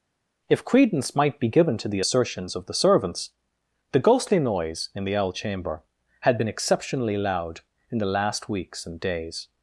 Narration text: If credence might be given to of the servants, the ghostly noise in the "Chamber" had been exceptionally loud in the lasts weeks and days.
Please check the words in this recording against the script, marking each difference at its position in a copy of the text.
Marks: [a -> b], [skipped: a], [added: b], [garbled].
If credence might be given to [added: the assertions] of the servants, the ghostly noise in the [added: Owl] "Chamber" had been exceptionally loud in the [lasts -> last] weeks and days.